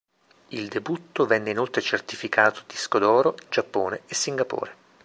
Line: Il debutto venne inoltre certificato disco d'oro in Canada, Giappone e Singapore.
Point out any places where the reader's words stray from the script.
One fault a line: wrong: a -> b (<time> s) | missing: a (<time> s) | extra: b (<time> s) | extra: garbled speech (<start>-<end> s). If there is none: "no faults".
missing: in Canada (3.4 s)